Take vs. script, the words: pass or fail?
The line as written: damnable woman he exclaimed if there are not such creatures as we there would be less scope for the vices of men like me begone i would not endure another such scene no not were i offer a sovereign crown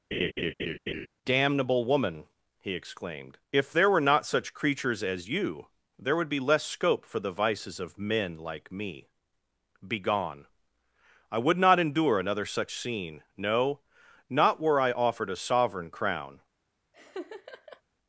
fail